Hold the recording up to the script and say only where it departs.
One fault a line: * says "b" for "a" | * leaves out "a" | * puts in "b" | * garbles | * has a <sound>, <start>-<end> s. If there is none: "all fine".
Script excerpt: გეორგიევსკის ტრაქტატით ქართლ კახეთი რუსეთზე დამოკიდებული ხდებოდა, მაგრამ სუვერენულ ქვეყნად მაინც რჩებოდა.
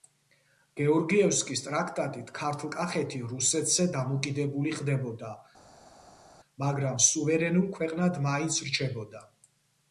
all fine